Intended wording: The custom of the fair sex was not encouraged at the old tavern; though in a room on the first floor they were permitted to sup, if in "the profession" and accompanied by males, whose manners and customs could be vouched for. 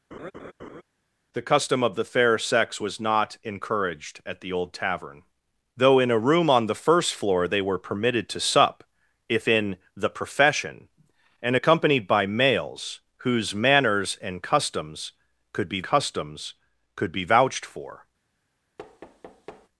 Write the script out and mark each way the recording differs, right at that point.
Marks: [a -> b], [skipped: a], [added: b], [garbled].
The custom of the fair sex was not encouraged at the old tavern; though in a room on the first floor they were permitted to sup, if in "the profession" and accompanied by males, whose manners and customs could be [added: customs could be] vouched for.